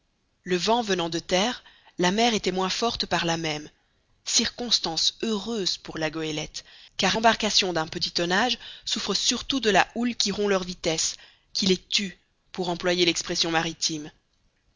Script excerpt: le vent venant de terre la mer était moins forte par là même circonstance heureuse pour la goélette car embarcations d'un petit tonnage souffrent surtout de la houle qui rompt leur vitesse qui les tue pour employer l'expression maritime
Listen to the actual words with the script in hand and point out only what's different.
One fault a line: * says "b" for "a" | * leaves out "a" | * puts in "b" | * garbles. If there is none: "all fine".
all fine